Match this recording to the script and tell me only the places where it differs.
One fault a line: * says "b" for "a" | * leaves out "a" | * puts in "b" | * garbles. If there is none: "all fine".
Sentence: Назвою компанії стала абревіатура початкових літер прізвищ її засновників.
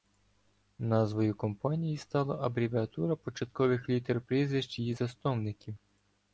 all fine